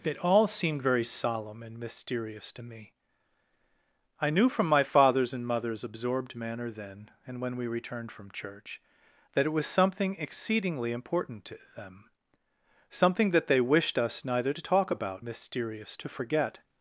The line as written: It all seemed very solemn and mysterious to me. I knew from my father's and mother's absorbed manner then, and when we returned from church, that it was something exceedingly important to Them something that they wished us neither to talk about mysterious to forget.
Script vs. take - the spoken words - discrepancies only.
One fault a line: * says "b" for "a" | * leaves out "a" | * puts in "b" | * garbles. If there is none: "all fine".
all fine